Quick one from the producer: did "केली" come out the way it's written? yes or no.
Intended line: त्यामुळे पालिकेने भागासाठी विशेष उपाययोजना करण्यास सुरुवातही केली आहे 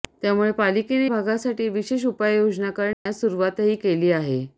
yes